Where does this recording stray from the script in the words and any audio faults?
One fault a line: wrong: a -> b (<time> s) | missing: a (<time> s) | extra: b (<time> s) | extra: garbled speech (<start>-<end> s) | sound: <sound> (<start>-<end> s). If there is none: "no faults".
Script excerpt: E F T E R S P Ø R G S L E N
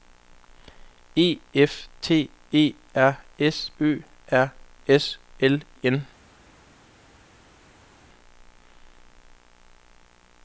missing: P (3.7 s)
missing: G (4.5 s)
missing: E (5.6 s)